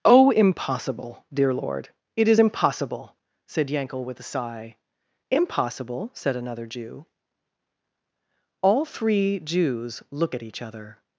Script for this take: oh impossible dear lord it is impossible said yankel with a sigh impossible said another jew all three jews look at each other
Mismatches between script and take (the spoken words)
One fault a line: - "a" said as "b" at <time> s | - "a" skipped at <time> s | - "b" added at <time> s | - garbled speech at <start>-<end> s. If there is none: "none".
none